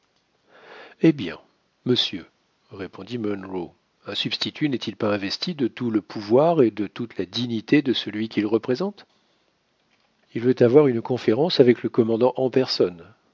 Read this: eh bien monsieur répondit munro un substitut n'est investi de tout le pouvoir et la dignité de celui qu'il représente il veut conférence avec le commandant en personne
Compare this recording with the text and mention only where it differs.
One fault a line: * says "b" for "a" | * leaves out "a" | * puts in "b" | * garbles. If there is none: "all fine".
* puts in "il pas"
* puts in "de toute"
* puts in "avoir une"